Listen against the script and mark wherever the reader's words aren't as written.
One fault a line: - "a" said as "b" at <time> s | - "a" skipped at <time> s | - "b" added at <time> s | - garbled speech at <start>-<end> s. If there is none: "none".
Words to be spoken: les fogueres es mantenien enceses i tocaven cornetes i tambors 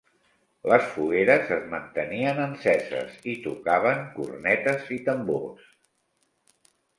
none